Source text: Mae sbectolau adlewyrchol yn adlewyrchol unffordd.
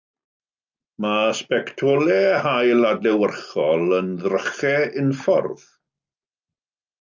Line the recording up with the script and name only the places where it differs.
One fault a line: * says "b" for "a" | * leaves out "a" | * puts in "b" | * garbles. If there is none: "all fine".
* puts in "haul"
* says "ddrychau" for "adlewyrchol"